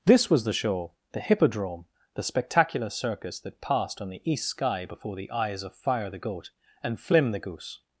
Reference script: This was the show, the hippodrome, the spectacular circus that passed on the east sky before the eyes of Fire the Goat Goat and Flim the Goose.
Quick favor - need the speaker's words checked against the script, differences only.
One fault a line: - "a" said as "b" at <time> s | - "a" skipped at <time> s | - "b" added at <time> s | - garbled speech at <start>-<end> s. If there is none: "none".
- "Goat" skipped at 6.5 s